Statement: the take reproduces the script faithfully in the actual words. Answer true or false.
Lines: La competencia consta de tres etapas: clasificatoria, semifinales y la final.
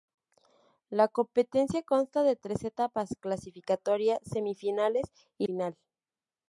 false